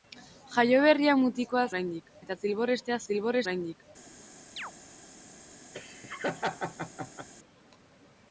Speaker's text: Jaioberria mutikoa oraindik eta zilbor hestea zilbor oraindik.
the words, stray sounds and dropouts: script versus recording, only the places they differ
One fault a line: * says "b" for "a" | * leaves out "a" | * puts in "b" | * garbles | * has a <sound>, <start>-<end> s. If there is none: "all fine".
* has a chirp, 4.6-4.7 s
* has a laugh, 5.7-7.3 s